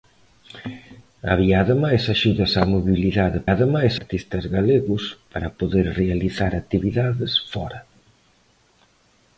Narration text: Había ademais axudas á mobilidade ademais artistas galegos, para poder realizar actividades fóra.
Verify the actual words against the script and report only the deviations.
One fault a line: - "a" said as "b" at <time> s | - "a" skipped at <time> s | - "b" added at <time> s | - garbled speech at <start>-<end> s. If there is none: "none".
none